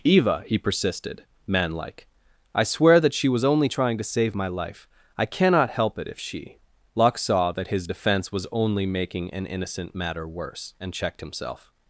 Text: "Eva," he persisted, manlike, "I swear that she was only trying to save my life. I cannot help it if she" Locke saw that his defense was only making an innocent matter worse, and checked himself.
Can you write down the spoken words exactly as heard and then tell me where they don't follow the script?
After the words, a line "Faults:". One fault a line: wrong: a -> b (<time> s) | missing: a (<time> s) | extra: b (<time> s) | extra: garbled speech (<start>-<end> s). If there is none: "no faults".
"Eva," he persisted, manlike, "I swear that she was only trying to save my life. I cannot help it if she" Locke saw that his defense was only making an innocent matter worse, and checked himself.
Faults:
no faults